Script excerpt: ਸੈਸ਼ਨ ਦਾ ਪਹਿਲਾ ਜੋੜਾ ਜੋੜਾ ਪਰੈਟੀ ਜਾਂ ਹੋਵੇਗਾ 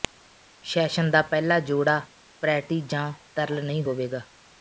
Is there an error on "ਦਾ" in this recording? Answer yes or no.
no